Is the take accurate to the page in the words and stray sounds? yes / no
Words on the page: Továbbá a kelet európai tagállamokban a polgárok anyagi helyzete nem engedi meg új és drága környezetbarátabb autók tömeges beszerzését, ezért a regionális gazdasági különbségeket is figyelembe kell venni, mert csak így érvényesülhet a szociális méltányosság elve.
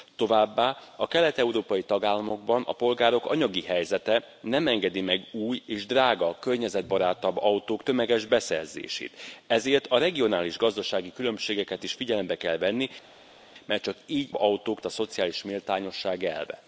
no